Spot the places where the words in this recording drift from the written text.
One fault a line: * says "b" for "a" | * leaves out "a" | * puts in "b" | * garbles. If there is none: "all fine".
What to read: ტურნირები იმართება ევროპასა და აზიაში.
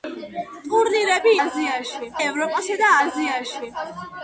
* says "აზიაში" for "იმართება"